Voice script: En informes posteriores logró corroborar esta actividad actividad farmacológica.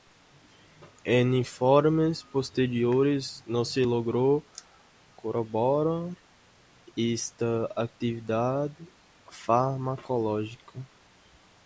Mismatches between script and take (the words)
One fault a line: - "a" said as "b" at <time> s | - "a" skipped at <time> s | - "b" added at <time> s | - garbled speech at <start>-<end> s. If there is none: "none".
- "no se" added at 3.5 s
- "actividad" skipped at 8.7 s